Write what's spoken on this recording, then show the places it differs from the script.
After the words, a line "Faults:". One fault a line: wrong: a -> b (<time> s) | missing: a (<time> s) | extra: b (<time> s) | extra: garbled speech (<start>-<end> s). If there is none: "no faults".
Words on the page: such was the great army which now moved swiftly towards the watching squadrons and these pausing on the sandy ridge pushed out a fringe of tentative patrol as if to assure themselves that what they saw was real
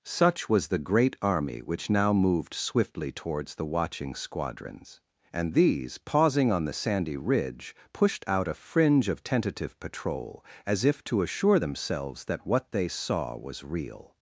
such was the great army which now moved swiftly towards the watching squadrons and these pausing on the sandy ridge pushed out a fringe of tentative patrol as if to assure themselves that what they saw was real
Faults:
no faults